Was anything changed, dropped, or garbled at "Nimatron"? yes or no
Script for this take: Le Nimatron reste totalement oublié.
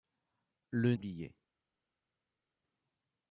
yes